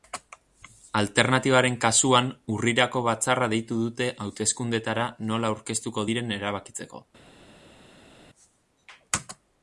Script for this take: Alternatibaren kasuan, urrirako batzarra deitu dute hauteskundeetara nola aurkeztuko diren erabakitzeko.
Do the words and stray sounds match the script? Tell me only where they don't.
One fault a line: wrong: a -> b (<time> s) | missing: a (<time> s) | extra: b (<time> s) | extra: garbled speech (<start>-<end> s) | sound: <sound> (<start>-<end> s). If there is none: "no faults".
no faults